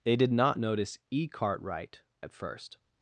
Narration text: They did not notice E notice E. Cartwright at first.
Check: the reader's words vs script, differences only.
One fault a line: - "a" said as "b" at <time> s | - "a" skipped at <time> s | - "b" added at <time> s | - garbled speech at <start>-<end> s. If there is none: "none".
- "notice E" skipped at 1.3 s